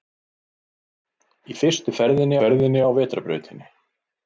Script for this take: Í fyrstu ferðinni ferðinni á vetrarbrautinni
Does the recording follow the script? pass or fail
pass